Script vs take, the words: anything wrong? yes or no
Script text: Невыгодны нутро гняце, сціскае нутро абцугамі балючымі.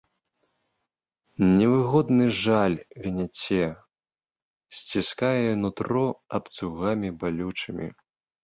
yes